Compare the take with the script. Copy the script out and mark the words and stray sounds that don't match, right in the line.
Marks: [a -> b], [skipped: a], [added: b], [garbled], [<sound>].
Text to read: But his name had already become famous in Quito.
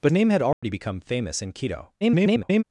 But [skipped: his] name had already [dropout] become famous in Quito. [garbled]